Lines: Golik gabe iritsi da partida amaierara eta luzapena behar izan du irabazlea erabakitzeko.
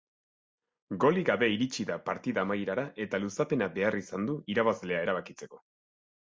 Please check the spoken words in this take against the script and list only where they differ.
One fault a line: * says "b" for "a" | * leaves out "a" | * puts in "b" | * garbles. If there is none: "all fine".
all fine